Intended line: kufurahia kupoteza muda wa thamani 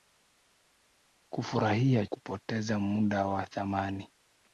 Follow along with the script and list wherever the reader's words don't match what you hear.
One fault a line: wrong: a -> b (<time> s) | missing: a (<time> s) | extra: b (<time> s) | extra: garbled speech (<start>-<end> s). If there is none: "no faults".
no faults